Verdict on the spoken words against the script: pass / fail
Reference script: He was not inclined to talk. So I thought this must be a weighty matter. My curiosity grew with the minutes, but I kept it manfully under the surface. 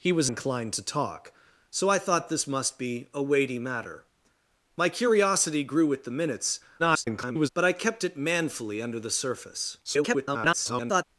fail